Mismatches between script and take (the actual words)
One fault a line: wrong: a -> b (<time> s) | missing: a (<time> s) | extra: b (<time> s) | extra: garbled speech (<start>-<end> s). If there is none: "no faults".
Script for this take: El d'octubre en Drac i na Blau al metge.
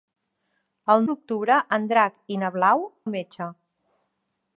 no faults